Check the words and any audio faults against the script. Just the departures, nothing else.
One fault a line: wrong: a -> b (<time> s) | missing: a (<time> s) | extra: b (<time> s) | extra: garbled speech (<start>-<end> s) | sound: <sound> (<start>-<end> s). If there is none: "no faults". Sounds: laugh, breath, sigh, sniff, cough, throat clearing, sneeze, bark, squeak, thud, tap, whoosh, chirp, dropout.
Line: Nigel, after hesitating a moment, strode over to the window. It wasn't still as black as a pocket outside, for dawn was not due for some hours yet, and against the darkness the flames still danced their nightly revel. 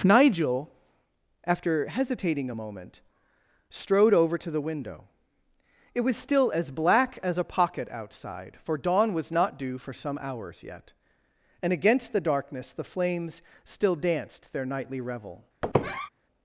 wrong: wasn't -> was (6.0 s)
sound: squeak (15.6-16.1 s)